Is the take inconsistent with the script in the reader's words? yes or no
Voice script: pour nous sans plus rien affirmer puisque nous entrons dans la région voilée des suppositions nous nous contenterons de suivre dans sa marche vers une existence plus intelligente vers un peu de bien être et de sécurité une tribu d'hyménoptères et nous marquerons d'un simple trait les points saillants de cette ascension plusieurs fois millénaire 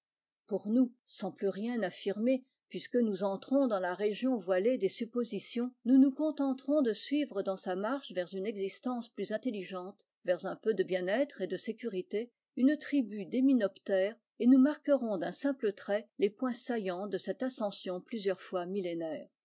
no